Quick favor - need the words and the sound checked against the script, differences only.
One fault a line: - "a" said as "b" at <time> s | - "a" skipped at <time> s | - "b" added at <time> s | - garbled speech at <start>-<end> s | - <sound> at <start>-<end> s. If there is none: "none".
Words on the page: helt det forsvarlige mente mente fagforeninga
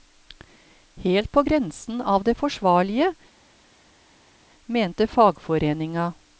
- "på grensen av" added at 1.3 s
- "mente" skipped at 5.1 s